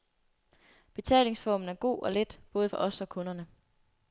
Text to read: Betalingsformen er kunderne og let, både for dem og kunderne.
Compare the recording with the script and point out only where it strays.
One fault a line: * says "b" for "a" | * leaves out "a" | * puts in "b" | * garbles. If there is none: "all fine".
* says "god" for "kunderne"
* says "os" for "dem"